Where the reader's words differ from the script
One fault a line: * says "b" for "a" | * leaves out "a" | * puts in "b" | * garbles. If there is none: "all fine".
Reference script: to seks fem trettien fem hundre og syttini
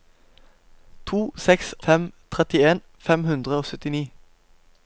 all fine